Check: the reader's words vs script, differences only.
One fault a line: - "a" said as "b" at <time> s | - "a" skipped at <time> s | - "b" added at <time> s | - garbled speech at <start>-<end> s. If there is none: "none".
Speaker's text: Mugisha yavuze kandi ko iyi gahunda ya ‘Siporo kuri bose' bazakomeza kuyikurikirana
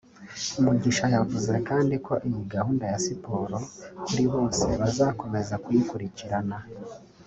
none